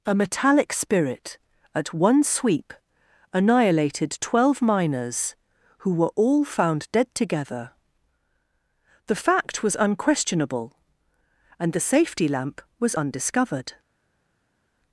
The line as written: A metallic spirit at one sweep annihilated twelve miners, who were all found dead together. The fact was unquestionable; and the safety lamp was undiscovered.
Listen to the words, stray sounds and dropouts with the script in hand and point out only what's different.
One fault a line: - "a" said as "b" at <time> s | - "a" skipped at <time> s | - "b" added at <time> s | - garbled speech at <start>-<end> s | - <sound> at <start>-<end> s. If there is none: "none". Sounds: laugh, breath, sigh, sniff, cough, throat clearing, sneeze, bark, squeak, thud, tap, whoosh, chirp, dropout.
none